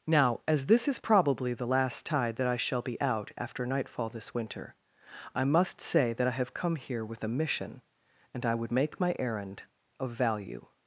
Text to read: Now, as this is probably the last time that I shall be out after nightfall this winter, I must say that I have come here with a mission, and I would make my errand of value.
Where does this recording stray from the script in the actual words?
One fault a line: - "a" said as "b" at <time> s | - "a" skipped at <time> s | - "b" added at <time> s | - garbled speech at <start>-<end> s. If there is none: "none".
- "time" said as "tide" at 2.1 s